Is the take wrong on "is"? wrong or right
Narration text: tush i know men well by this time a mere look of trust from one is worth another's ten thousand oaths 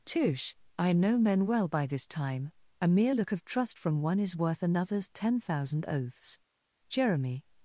right